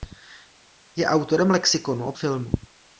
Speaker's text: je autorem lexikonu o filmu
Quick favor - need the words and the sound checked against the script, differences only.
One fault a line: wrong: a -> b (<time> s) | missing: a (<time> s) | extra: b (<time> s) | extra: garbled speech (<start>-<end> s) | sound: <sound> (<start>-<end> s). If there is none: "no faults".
no faults